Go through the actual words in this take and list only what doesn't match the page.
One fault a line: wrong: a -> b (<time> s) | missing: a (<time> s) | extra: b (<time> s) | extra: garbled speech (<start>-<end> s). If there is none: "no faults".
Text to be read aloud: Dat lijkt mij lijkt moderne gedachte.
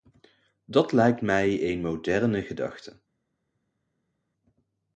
wrong: lijkt -> een (1.7 s)